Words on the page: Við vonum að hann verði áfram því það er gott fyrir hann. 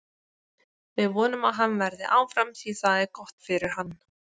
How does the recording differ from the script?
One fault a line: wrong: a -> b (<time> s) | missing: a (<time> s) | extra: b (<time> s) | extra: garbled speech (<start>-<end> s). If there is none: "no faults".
no faults